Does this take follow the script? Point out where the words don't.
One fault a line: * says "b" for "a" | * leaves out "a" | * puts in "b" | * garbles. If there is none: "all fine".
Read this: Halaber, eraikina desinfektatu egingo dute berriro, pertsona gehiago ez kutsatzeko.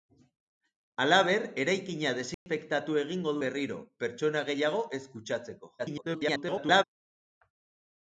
* leaves out "dute"
* garbles